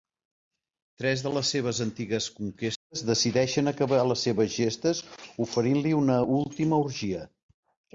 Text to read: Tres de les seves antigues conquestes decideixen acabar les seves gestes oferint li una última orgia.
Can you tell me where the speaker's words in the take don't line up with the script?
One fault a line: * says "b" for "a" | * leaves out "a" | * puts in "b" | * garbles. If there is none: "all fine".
all fine